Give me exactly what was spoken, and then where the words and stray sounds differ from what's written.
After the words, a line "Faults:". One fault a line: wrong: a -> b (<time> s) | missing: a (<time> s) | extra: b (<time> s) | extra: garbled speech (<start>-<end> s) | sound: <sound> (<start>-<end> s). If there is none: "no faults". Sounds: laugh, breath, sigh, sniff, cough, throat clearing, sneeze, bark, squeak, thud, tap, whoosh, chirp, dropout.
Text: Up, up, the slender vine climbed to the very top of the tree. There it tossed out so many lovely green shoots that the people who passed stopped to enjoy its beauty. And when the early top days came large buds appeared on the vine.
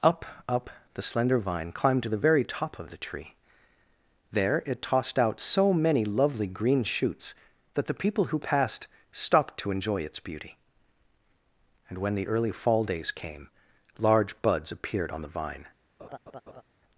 Up, up, the slender vine climbed to the very top of the tree. There it tossed out so many lovely green shoots that the people who passed stopped to enjoy its beauty. And when the early fall days came large buds appeared on the vine.
Faults:
wrong: top -> fall (12.5 s)
sound: laugh (16.0-16.6 s)